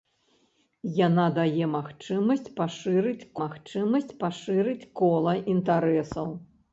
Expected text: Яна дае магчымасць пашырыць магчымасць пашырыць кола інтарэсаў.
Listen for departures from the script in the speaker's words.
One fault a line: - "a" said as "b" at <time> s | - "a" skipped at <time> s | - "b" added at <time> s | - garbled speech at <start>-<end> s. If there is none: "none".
none